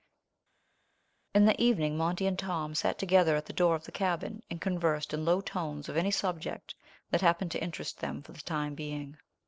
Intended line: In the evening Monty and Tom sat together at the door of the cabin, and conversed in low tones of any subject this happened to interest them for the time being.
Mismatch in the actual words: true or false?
true